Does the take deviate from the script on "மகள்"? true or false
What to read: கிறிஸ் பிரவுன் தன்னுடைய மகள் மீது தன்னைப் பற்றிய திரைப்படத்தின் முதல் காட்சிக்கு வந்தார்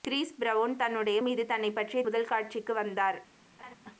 true